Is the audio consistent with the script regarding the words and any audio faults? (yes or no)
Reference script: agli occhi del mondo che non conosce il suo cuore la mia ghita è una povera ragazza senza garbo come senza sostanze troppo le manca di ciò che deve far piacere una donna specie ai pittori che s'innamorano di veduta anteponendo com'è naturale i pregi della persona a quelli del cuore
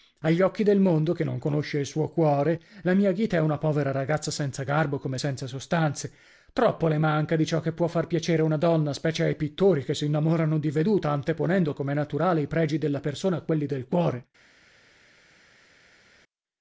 no